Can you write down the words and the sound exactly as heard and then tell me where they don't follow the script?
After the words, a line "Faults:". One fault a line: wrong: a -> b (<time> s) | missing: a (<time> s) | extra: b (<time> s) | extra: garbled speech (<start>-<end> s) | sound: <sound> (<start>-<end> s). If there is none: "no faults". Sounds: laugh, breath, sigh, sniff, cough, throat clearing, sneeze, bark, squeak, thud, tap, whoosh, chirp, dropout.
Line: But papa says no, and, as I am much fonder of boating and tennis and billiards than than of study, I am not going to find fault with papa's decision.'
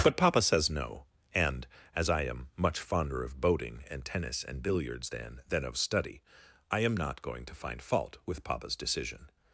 But papa says no, and, as I am much fonder of boating and tennis and billiards than than of study, I am not going to find fault with papa's decision.'
Faults:
no faults